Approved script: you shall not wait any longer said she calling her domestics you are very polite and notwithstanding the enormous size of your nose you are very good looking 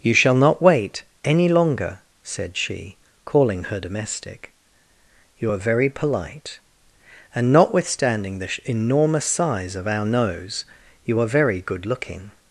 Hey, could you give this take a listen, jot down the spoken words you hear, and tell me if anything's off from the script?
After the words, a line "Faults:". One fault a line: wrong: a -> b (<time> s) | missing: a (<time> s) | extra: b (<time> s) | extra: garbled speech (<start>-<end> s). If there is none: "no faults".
you shall not wait any longer said she calling her domestic you are very polite and notwithstanding the enormous size of our nose you are very good looking
Faults:
wrong: domestics -> domestic (3.8 s)
wrong: your -> our (9.9 s)